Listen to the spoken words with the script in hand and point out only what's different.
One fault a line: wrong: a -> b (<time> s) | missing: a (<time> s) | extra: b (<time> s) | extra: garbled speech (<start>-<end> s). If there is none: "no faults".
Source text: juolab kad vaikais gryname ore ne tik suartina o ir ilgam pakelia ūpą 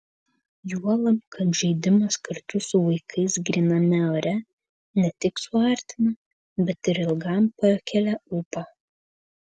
extra: žaidimas kartu su (1.6 s)
wrong: o -> bet (6.7 s)